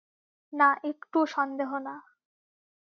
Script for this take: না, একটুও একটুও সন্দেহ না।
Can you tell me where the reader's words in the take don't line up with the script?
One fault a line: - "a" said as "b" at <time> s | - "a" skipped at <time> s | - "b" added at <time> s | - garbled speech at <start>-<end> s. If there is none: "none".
- "একটুও" skipped at 1.2 s